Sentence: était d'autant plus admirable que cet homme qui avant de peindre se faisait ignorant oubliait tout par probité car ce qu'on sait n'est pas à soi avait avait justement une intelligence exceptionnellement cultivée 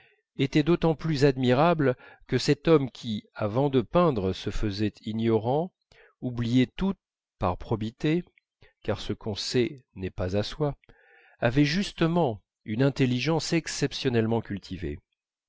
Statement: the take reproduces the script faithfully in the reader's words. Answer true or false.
false